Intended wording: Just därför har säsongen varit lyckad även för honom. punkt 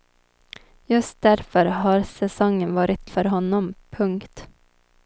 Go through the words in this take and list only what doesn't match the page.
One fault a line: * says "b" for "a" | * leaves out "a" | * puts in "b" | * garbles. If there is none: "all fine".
* leaves out "lyckad även"